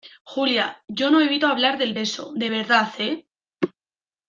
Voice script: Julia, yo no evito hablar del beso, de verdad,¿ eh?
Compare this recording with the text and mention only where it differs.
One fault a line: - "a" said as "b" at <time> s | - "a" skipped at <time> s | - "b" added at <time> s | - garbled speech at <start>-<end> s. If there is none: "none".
none